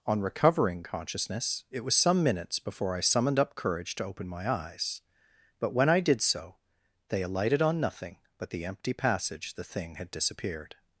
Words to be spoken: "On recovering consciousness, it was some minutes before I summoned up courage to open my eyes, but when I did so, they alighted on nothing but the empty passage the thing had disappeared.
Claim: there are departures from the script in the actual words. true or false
false